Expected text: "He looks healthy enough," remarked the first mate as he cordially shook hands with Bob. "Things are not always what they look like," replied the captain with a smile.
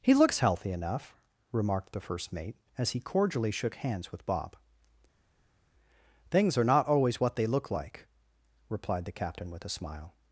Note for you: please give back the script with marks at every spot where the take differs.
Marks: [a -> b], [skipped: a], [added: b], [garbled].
"He looks healthy enough," remarked the first mate as he cordially shook hands with Bob. "Things are not always what they look like," replied the captain with a smile.